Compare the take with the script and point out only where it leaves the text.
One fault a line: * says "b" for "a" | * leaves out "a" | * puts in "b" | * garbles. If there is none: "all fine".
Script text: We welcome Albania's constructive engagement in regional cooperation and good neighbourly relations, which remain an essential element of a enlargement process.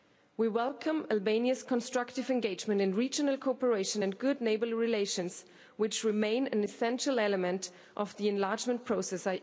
* says "the" for "a"